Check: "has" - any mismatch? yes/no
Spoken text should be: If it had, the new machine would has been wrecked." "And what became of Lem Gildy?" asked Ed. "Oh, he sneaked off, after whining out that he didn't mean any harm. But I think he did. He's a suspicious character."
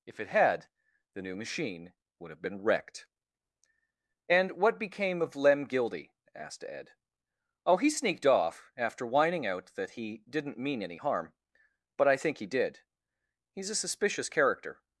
yes